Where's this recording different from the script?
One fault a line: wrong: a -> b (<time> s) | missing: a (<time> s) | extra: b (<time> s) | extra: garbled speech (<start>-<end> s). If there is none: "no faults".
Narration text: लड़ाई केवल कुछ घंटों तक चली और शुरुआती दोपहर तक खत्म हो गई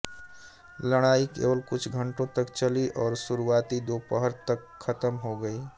no faults